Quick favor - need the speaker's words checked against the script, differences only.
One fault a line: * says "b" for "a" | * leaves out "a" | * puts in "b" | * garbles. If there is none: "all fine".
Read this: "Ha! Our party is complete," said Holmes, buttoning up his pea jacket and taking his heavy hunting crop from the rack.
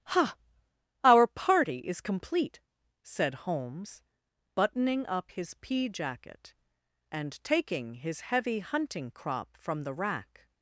all fine